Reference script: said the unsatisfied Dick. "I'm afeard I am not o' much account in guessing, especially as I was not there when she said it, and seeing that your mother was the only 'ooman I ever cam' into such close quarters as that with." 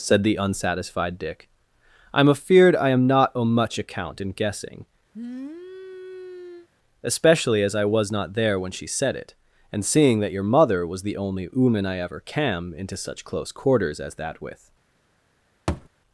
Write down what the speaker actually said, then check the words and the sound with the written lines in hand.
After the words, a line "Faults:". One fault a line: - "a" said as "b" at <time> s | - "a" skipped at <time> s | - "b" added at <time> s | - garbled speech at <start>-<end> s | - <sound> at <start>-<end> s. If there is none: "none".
said the unsatisfied Dick. "I'm afeard I am not o' much account in guessing, especially as I was not there when she said it, and seeing that your mother was the only 'ooman I ever cam' into such close quarters as that with."
Faults:
- sniff at 5.1-6.7 s
- thud at 15.7-15.9 s